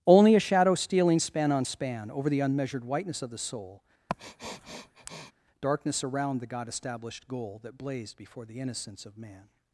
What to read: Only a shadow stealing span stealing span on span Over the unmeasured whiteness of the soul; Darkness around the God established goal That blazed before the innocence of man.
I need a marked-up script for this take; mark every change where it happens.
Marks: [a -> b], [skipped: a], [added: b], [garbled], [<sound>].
Only a shadow stealing span [skipped: stealing span] on span Over the unmeasured whiteness of the soul; [sniff] Darkness around the God established goal That blazed before the innocence of man.